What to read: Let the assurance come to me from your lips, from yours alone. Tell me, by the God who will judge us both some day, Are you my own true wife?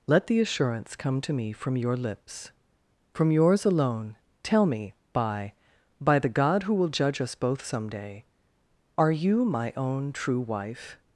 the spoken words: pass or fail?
fail